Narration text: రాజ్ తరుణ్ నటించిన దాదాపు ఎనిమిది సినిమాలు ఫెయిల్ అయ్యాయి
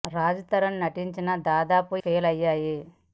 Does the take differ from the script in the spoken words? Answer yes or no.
yes